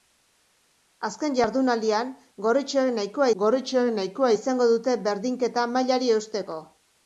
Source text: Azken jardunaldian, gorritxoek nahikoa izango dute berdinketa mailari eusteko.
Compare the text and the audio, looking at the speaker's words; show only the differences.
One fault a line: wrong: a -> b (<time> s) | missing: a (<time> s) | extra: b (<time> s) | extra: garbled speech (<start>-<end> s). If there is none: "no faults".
extra: gorritxoek nahikoa (3.4 s)